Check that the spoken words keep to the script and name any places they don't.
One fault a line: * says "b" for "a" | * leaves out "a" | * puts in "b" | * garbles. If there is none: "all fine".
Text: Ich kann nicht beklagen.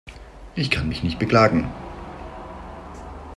* puts in "mich"